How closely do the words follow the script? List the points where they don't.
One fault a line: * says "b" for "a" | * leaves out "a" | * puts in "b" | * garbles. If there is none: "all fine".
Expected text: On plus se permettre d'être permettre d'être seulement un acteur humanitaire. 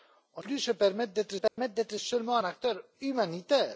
all fine